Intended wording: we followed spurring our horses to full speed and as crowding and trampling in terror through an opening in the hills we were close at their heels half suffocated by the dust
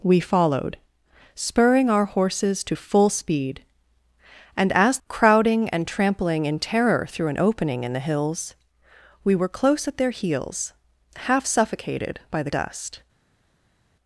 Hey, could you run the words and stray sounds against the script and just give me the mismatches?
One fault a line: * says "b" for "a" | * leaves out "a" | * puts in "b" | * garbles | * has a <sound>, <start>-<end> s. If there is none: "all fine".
all fine